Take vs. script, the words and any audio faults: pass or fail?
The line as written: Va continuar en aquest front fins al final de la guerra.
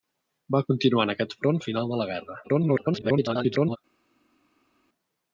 fail